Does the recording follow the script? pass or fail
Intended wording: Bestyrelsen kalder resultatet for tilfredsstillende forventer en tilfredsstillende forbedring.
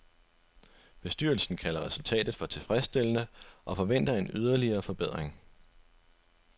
fail